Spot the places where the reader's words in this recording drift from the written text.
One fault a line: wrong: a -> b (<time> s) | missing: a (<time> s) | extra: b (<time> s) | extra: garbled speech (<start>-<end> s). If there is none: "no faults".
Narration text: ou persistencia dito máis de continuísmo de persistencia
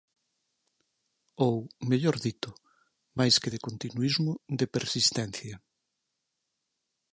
wrong: persistencia -> mellor (1.9 s)
extra: que (3.4 s)